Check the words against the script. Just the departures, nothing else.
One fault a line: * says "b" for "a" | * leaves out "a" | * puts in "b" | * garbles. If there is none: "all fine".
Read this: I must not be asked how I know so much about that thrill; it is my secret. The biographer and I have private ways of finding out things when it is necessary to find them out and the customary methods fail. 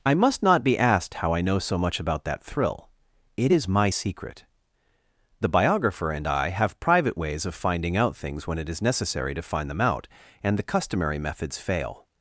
all fine